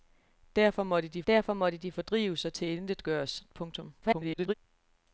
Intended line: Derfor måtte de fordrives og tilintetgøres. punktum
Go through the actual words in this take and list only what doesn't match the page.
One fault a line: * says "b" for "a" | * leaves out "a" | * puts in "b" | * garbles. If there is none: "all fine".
* puts in "derfor måtte de"
* garbles